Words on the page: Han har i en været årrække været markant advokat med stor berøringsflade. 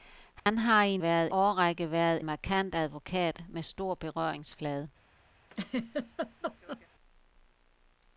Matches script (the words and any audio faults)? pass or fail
fail